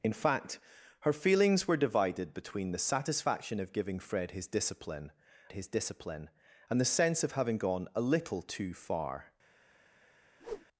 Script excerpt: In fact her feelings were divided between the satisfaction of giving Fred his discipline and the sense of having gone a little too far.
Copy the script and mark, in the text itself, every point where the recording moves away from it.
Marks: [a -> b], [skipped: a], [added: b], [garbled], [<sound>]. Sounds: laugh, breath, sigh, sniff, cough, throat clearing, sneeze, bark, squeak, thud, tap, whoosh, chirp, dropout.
In fact her feelings were divided between the satisfaction of giving Fred his discipline [added: his discipline] and the sense of having gone a little too far. [whoosh]